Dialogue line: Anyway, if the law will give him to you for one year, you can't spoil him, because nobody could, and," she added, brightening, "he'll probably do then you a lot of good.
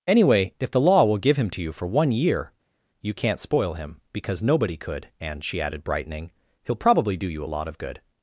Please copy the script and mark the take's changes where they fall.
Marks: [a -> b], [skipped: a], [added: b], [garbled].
Anyway, if the law will give him to you for one year, you can't spoil him, because nobody could, and," she added, brightening, "he'll probably do [skipped: then] you a lot of good.